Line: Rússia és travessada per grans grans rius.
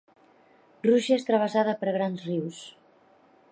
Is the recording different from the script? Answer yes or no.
yes